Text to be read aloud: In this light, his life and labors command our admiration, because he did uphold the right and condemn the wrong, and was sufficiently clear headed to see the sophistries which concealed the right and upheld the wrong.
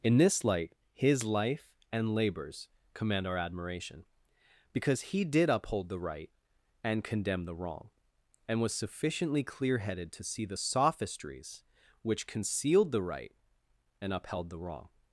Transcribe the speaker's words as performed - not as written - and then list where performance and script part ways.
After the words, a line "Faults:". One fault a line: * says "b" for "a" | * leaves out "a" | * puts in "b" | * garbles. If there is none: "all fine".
In this light, his life and labors command our admiration, because he did uphold the right and condemn the wrong, and was sufficiently clear headed to see the sophistries which concealed the right and upheld the wrong.
Faults:
all fine